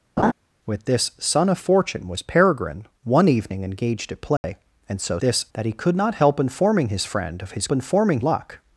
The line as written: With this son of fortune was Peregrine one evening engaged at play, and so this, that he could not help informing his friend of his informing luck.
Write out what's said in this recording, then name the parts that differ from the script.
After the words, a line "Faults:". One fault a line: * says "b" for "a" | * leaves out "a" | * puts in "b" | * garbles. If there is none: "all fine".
With this son of fortune was Peregrine one evening engaged at play, and so this, that he could not help informing his friend of his informing luck.
Faults:
all fine